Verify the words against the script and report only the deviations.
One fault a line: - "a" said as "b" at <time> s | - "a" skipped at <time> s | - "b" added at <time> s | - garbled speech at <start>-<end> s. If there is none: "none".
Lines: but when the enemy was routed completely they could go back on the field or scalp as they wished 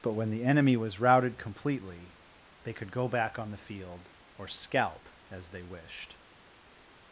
none